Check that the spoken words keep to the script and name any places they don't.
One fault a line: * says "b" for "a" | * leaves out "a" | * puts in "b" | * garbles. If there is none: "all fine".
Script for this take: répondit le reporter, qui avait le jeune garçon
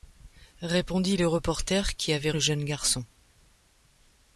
all fine